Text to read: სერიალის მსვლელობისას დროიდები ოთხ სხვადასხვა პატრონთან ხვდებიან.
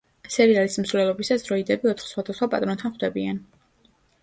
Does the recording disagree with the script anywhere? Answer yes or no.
no